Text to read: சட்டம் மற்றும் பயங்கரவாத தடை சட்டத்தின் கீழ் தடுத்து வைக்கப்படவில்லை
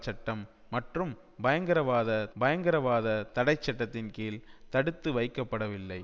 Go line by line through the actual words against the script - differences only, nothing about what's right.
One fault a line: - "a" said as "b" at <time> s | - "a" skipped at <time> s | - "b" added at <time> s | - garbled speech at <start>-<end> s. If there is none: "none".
- "பயங்கரவாத" added at 2.4 s